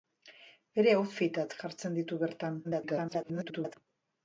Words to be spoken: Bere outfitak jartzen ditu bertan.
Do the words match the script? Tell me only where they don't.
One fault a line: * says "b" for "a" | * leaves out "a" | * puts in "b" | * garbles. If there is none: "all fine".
* garbles